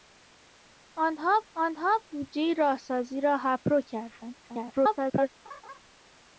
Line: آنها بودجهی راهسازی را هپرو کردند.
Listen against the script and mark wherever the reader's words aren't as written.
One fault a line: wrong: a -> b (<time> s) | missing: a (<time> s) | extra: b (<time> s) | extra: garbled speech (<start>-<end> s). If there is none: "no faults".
extra: آنها (1.6 s)
extra: garbled speech (4.4-5.3 s)